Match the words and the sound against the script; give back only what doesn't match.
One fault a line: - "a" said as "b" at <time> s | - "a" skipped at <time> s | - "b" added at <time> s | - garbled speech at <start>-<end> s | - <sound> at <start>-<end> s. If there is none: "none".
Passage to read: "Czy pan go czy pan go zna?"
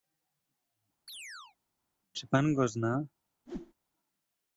- chirp at 1.1-1.6 s
- "czy pan go" skipped at 2.7 s
- whoosh at 3.5-3.7 s